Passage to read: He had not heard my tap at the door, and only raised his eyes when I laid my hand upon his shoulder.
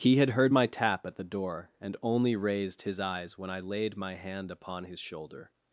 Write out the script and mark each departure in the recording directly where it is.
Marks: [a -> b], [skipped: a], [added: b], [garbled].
He had [skipped: not] heard my tap at the door, and only raised his eyes when I laid my hand upon his shoulder.